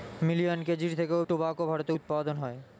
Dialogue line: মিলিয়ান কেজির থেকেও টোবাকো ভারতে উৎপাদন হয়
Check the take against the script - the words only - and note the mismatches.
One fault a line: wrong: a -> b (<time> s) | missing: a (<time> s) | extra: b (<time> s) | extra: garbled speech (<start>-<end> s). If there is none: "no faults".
no faults